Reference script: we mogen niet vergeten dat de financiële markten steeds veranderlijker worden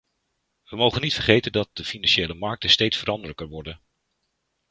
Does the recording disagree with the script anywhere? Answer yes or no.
no